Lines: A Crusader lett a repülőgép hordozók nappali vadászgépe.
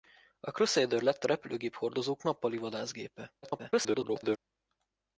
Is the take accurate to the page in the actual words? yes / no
no